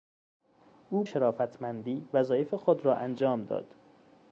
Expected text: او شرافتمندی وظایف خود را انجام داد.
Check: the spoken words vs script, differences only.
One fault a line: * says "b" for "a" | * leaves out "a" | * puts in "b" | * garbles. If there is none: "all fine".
all fine